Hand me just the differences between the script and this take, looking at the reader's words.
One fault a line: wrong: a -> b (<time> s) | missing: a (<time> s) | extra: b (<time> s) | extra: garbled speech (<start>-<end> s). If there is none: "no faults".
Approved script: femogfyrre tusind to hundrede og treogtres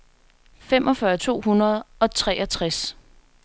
missing: tusind (1.2 s)